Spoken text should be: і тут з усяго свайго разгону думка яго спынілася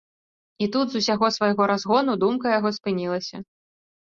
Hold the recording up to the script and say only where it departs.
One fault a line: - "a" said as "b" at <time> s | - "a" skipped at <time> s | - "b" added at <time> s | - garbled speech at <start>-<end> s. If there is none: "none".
none